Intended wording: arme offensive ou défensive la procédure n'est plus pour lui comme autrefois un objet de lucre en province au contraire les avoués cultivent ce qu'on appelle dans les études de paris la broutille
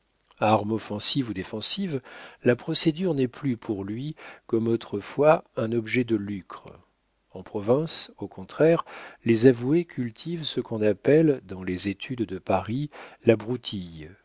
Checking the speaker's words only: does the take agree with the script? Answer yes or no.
yes